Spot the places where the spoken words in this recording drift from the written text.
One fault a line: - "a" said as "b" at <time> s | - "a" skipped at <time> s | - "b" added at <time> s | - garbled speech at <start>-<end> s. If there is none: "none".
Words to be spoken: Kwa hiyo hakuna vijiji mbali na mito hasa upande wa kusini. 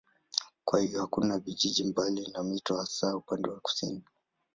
none